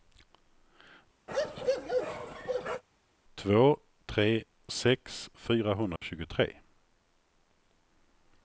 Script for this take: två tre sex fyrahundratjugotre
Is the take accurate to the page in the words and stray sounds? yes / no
no